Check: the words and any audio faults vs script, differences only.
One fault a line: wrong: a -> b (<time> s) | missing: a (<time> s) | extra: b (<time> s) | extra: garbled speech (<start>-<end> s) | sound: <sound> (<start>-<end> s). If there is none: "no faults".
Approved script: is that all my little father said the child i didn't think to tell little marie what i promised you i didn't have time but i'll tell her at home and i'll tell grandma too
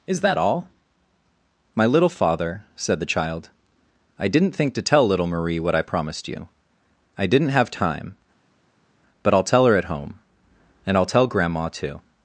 no faults